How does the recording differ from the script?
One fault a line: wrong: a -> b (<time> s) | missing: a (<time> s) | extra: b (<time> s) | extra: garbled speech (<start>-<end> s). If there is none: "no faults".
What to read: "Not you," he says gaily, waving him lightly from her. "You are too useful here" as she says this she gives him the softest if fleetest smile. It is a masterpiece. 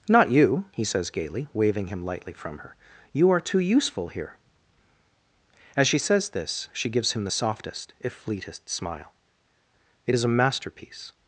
no faults